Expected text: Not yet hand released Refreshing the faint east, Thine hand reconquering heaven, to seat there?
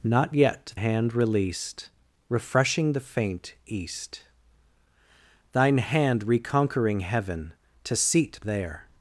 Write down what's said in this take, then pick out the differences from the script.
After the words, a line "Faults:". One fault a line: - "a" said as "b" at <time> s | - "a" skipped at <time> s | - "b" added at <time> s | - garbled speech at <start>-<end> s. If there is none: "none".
Not yet hand released Refreshing the faint east, Thine hand reconquering heaven, to seat there?
Faults:
none